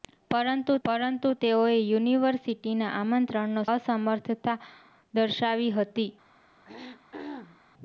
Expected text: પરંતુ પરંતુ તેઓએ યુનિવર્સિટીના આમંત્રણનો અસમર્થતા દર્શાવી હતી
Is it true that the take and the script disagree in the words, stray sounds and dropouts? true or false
true